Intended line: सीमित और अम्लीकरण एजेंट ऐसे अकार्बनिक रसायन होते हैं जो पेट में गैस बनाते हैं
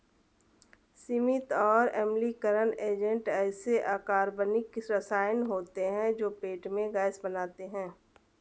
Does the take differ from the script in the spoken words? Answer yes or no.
no